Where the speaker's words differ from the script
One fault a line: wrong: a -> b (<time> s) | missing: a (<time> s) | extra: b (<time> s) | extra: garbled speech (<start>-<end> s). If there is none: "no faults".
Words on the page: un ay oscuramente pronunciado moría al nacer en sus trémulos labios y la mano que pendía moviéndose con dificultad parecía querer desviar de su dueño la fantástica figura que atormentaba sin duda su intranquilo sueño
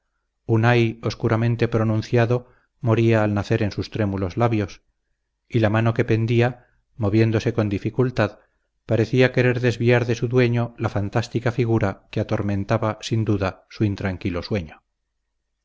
no faults